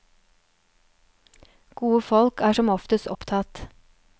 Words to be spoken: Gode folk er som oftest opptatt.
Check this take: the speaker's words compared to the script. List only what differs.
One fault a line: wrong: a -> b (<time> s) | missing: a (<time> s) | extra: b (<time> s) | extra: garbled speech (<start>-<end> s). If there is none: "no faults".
no faults